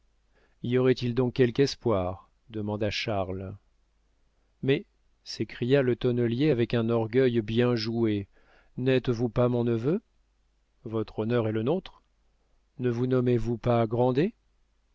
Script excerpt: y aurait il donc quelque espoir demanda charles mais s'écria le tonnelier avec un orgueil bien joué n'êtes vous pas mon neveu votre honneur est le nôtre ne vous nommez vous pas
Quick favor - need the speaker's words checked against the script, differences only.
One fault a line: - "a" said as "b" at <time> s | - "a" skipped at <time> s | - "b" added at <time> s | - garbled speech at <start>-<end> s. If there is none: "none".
none